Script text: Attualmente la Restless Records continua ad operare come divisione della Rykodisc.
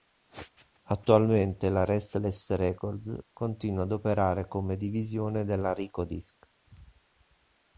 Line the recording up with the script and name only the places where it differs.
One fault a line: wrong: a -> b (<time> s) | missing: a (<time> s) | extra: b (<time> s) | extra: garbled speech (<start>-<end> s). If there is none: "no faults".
no faults